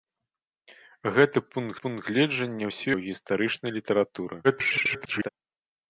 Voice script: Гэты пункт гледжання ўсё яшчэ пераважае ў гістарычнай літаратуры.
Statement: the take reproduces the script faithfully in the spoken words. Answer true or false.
false